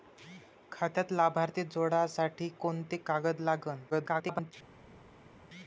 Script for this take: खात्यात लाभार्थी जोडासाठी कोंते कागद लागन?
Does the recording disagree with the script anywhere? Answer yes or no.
yes